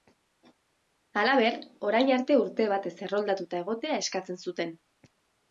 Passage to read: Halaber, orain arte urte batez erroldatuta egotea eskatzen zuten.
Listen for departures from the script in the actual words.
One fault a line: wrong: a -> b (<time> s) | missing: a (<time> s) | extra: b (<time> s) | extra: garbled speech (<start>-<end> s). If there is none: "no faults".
no faults